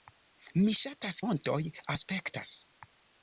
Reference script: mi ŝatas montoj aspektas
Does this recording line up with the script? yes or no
yes